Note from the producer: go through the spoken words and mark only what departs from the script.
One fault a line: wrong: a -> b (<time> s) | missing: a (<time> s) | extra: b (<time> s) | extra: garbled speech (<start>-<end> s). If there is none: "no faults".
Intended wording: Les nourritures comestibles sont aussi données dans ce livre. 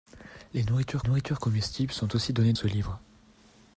extra: nourritures (1.0 s)
missing: dans (2.5 s)